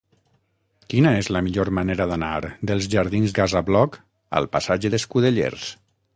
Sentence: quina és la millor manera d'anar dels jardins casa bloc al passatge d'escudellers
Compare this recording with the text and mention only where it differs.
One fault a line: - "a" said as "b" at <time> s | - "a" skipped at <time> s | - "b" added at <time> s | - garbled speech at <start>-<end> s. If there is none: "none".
none